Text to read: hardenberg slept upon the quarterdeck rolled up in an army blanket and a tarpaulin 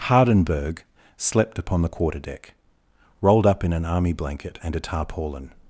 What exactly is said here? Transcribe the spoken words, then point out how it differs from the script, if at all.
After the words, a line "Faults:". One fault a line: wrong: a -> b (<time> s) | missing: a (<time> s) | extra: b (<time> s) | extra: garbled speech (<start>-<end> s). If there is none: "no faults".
hardenberg slept upon the quarterdeck rolled up in an army blanket and a tarpaulin
Faults:
no faults